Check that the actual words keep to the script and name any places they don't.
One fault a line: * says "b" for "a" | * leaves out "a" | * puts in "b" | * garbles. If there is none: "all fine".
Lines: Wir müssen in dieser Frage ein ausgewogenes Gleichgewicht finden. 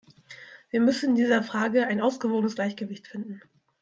all fine